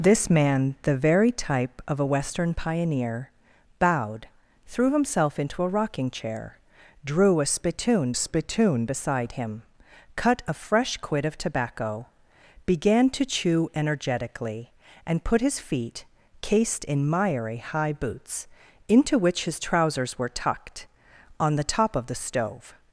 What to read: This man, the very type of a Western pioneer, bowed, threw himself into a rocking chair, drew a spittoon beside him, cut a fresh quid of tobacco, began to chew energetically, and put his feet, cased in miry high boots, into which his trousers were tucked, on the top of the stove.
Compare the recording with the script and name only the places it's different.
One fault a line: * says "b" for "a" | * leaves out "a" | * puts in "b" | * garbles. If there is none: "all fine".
* puts in "spittoon"